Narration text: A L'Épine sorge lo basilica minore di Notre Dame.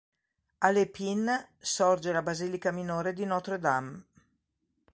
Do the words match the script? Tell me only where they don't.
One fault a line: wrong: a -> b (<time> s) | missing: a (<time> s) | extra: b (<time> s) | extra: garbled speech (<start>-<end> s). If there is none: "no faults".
wrong: lo -> la (2.1 s)